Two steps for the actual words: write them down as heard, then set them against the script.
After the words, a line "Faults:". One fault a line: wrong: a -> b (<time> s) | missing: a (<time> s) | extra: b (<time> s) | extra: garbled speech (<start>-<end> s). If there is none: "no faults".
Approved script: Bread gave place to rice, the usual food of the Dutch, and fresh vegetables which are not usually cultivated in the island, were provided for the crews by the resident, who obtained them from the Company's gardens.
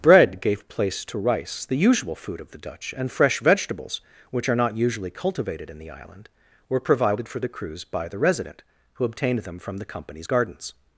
Bread gave place to rice, the usual food of the Dutch, and fresh vegetables which are not usually cultivated in the island, were provided for the crews by the resident, who obtained them from the Company's gardens.
Faults:
no faults